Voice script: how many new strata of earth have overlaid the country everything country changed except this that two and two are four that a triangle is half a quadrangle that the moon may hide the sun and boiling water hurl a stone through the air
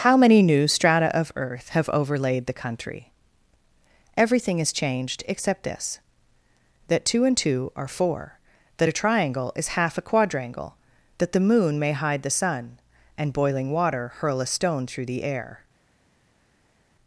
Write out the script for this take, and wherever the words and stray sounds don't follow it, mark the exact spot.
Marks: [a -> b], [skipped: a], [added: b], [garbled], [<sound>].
how many new strata of earth have overlaid the country everything [country -> has] changed except this that two and two are four that a triangle is half a quadrangle that the moon may hide the sun and boiling water hurl a stone through the air